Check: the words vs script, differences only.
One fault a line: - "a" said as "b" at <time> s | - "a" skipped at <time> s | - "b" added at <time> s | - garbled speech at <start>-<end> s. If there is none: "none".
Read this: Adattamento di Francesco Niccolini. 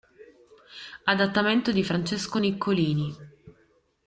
none